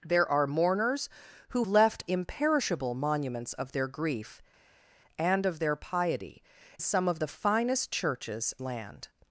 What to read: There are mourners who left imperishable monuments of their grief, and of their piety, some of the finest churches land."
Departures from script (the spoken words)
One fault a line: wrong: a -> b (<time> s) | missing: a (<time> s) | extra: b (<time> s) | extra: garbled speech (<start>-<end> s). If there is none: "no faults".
no faults